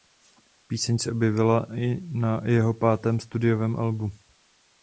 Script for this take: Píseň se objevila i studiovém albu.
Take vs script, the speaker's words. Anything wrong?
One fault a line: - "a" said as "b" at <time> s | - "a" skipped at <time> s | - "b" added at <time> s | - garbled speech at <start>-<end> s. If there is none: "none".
- "na jeho pátém" added at 2.0 s